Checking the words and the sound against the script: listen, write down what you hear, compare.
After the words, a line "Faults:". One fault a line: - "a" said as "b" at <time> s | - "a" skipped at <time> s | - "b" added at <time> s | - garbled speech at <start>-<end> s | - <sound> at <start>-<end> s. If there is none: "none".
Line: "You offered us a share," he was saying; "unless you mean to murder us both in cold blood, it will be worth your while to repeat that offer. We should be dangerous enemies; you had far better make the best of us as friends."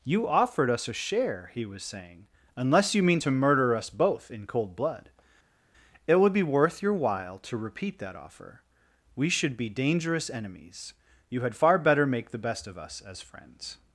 "You offered us a share," he was saying; "unless you mean to murder us both in cold blood, it would be worth your while to repeat that offer. We should be dangerous enemies; you had far better make the best of us as friends."
Faults:
- "will" said as "would" at 6.2 s